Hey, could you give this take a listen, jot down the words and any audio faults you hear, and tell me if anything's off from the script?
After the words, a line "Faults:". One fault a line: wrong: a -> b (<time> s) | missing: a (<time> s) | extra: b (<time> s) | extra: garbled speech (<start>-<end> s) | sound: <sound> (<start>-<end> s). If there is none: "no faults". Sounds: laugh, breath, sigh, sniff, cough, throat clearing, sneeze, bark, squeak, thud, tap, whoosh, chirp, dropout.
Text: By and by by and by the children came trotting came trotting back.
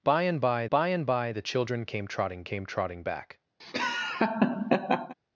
By and by by and by the children came trotting came trotting back.
Faults:
sound: laugh (3.6-5.1 s)